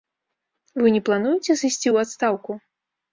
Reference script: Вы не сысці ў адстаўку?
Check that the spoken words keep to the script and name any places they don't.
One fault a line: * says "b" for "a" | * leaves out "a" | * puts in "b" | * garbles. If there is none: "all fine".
* puts in "плануеце"